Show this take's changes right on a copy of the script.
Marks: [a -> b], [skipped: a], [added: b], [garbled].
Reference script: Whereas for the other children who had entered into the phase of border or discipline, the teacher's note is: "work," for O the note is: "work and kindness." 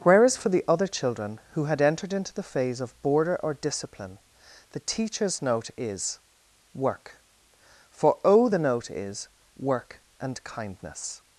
Whereas for the other children who had entered into the phase of border or discipline, the teacher's note is: "work," for O the note is: "work and kindness."